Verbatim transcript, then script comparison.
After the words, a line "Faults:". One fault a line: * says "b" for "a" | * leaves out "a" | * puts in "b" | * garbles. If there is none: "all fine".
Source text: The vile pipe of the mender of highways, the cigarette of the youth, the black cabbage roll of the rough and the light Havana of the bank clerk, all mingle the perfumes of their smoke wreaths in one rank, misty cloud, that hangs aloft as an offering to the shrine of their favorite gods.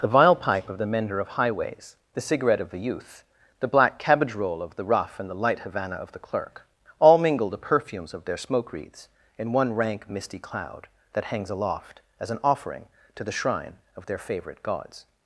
The vile pipe of the mender of highways, the cigarette of the youth, the black cabbage roll of the rough and the light Havana of the clerk, all mingle the perfumes of their smoke wreaths in one rank, misty cloud, that hangs aloft as an offering to the shrine of their favorite gods.
Faults:
* leaves out "bank"